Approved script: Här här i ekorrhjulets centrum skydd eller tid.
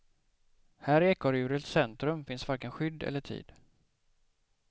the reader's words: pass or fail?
fail